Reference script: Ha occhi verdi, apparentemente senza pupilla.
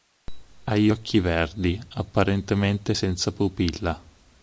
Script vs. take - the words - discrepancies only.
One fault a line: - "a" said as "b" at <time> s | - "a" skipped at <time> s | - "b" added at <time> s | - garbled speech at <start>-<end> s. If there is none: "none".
- "gli" added at 0.8 s